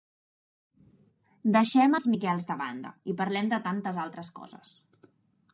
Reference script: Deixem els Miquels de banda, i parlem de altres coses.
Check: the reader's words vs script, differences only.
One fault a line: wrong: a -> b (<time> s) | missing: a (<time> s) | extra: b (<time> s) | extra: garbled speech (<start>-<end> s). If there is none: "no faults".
extra: tantes (3.7 s)